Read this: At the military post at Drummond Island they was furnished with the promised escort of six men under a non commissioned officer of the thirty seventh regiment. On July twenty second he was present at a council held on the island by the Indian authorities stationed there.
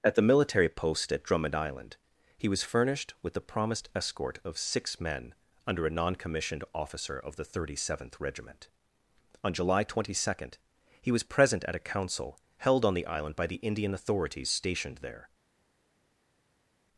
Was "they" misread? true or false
true